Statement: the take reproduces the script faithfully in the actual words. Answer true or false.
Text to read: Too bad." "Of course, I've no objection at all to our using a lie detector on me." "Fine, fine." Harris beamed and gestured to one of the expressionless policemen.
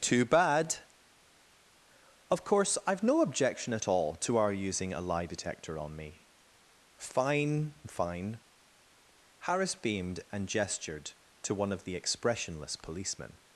true